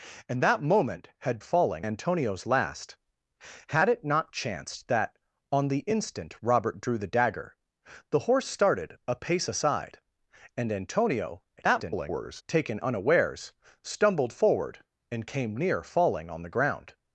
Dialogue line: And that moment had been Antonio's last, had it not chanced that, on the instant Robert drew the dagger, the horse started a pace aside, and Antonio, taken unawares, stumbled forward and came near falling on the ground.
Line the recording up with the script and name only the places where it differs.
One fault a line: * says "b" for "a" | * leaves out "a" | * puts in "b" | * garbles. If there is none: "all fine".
* says "falling" for "been"
* garbles